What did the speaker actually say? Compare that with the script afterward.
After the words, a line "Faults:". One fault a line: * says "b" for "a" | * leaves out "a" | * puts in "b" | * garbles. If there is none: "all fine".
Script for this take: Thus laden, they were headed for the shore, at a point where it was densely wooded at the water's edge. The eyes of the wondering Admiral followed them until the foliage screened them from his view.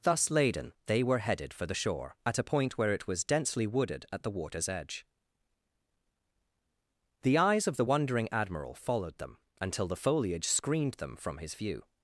Thus laden, they were headed for the shore, at a point where it was densely wooded at the water's edge. The eyes of the wondering Admiral followed them until the foliage screened them from his view.
Faults:
all fine